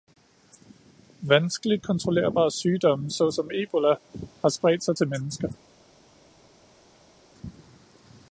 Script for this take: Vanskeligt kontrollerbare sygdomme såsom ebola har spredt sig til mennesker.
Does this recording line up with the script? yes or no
yes